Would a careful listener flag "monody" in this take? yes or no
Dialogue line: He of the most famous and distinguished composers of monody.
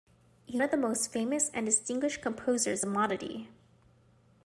no